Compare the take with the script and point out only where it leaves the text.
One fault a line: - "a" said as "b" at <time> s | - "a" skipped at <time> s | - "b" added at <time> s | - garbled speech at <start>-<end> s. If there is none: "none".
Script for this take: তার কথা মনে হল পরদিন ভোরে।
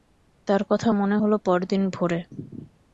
none